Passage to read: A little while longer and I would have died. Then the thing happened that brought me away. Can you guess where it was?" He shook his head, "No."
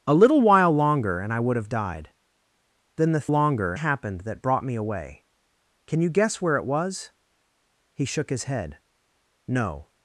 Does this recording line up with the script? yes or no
no